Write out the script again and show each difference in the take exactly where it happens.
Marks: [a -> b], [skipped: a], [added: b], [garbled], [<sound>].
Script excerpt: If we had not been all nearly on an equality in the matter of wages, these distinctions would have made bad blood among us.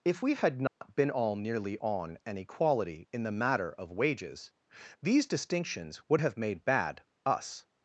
If we had not [dropout] been all nearly on an equality in the matter of wages, these distinctions would have made bad [skipped: blood among] us.